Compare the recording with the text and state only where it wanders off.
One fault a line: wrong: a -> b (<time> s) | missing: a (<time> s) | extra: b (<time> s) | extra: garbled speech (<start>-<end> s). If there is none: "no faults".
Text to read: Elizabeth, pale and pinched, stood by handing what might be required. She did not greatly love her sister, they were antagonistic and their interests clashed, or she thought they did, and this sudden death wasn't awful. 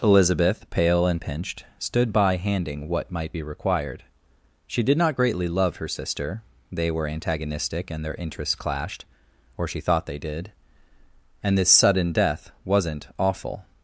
no faults